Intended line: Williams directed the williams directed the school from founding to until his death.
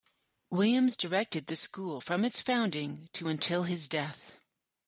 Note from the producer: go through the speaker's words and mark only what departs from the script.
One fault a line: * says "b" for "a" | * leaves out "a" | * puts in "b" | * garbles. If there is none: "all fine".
* leaves out "williams directed the"
* puts in "its"